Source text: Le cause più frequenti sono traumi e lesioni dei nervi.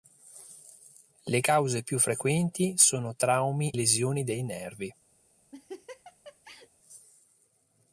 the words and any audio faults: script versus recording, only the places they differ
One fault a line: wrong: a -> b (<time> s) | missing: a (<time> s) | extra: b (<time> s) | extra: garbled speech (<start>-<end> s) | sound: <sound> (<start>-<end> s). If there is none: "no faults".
missing: e (3.7 s)
sound: laugh (5.5-6.7 s)